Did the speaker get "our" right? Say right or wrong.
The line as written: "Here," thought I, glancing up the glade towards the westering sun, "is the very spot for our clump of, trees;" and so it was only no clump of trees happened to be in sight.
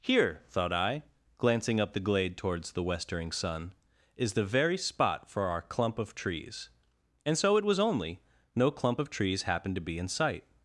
right